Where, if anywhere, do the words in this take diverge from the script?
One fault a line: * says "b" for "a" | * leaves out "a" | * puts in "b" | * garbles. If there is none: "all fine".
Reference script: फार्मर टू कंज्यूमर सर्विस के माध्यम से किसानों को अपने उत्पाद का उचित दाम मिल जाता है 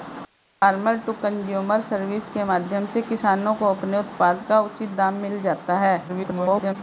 * garbles